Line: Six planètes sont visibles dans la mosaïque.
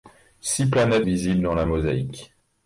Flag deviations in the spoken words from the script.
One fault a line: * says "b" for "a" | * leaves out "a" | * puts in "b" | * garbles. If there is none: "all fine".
* leaves out "sont"